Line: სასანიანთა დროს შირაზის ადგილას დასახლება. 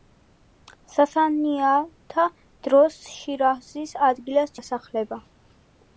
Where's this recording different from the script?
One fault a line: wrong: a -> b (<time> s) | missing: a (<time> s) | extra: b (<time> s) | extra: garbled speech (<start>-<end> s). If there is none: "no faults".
no faults